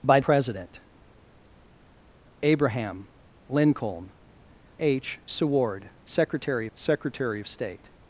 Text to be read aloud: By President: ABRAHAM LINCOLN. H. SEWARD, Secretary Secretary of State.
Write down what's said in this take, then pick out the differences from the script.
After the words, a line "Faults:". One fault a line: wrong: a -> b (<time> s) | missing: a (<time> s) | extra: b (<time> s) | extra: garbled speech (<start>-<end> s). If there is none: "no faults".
By President: ABRAHAM LINCOLN. H. SEWARD, Secretary Secretary of State.
Faults:
no faults